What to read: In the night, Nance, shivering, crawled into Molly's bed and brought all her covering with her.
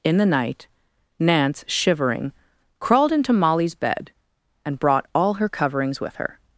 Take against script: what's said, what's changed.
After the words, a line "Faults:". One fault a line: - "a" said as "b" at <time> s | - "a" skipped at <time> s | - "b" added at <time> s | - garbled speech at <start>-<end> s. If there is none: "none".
In the night, Nance, shivering, crawled into Molly's bed and brought all her coverings with her.
Faults:
- "covering" said as "coverings" at 5.5 s